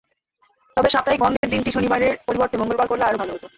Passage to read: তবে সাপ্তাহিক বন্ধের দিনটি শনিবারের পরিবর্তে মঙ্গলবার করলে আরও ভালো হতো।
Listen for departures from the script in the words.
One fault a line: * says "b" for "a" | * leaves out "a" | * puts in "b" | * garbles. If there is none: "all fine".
all fine